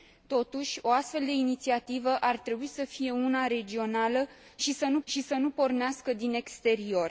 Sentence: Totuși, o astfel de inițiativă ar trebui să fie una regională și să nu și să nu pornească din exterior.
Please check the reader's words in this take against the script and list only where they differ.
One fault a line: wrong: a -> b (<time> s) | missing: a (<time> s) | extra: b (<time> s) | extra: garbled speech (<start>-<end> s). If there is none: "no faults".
no faults